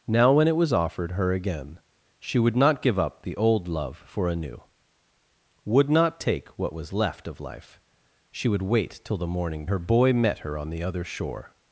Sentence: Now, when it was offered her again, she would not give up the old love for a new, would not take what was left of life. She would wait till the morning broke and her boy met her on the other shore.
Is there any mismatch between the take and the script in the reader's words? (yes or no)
yes